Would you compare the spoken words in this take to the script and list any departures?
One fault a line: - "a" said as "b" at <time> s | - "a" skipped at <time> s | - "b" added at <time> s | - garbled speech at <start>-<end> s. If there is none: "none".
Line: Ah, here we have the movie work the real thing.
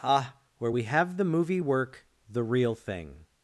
- "here" said as "where" at 0.6 s